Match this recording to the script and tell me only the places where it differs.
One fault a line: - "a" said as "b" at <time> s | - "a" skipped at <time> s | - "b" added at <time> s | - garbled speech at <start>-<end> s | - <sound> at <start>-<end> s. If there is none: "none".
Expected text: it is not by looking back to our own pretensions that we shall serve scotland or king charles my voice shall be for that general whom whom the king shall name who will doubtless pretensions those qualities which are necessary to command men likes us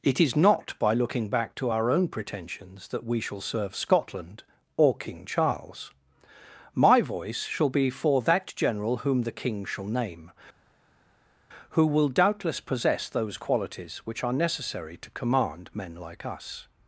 - "whom" skipped at 9.2 s
- "pretensions" said as "possess" at 12.6 s
- "likes" said as "like" at 15.9 s